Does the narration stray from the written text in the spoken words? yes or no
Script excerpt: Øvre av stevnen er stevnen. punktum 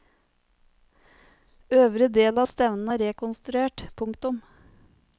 yes